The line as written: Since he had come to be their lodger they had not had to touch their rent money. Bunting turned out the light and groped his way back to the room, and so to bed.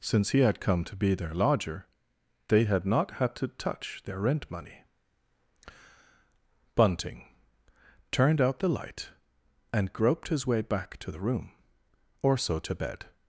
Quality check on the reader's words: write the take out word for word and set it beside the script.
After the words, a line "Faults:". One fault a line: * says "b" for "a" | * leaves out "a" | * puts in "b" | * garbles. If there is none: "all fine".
Since he had come to be their lodger they had not had to touch their rent money. Bunting turned out the light and groped his way back to the room, or so to bed.
Faults:
* says "or" for "and"